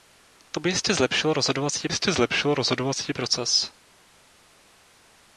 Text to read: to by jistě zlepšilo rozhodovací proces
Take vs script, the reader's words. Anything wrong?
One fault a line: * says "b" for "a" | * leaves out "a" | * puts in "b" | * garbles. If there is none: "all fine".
* puts in "jistě zlepšilo rozhodovací"